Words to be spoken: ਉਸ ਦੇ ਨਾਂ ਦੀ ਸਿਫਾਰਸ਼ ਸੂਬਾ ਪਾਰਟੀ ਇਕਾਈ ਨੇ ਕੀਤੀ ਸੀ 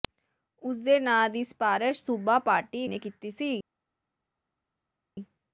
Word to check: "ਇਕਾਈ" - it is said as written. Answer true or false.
false